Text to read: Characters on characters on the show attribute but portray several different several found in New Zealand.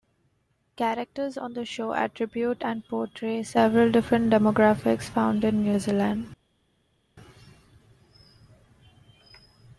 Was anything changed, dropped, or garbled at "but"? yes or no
yes